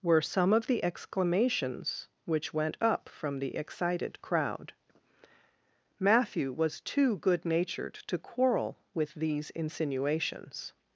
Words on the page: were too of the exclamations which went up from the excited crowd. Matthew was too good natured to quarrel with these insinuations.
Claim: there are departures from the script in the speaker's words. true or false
true